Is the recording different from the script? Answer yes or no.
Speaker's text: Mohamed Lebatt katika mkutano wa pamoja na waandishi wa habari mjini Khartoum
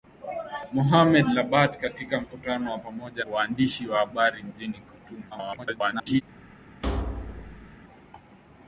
yes